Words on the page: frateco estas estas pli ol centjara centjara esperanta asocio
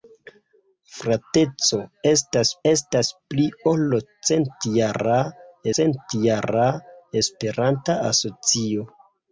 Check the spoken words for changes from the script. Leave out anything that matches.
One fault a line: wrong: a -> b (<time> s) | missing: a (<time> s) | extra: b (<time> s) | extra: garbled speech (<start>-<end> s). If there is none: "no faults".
no faults